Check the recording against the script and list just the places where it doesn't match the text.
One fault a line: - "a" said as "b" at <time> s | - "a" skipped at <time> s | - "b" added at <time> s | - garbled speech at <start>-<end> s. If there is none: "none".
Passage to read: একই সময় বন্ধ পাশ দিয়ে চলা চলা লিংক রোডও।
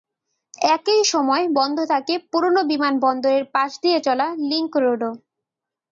- "থাকে পুরোনো বিমানবন্দরের" added at 1.9 s
- "চলা" skipped at 4.3 s